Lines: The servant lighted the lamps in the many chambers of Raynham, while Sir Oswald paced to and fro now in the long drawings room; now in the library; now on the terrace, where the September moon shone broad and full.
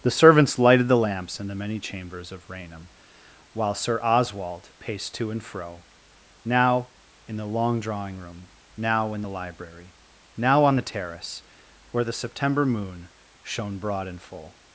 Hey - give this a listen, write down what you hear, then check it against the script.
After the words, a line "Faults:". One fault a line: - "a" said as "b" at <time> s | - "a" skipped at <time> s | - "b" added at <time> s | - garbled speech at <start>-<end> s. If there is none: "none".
The servants lighted the lamps in the many chambers of Raynham, while Sir Oswald paced to and fro now in the long drawing room; now in the library; now on the terrace, where the September moon shone broad and full.
Faults:
- "servant" said as "servants" at 0.1 s
- "drawings" said as "drawing" at 7.8 s